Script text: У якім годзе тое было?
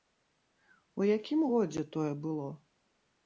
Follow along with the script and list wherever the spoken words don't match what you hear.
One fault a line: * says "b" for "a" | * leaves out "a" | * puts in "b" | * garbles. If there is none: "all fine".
all fine